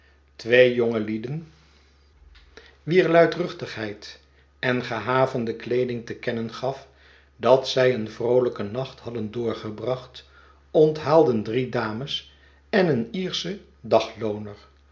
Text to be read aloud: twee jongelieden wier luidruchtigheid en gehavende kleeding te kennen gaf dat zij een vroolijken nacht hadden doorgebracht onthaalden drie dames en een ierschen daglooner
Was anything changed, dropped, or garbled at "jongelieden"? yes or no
no